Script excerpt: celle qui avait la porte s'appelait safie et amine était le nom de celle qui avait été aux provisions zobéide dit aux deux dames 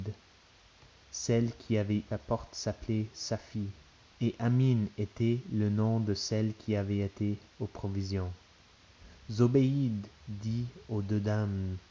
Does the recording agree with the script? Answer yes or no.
yes